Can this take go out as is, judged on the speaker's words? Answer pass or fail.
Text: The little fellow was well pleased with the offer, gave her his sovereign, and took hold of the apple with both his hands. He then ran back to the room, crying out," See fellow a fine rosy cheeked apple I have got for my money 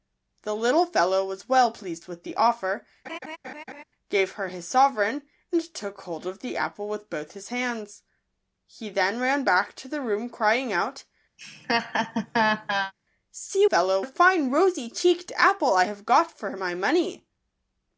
pass